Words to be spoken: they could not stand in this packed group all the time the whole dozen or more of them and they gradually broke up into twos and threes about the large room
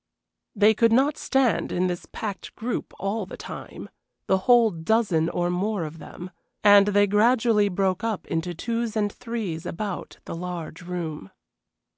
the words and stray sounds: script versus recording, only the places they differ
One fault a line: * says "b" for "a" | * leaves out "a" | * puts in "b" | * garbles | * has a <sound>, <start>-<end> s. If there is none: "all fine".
all fine